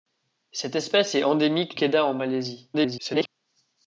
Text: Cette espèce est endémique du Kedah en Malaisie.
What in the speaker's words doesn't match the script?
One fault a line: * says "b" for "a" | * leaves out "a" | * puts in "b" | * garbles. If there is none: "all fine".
* leaves out "du"
* garbles